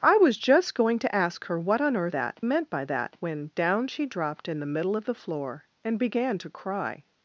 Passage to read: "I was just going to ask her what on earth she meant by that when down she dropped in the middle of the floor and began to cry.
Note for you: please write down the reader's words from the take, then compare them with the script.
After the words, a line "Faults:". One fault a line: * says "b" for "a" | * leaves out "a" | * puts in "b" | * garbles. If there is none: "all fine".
"I was just going to ask her what on earth that meant by that when down she dropped in the middle of the floor and began to cry.
Faults:
* says "that" for "she"